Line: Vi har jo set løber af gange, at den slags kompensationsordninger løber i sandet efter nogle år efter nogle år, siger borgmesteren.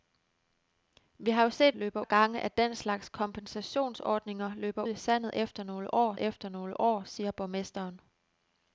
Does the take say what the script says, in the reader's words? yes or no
yes